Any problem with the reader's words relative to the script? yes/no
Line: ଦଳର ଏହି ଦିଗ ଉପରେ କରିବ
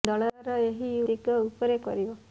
no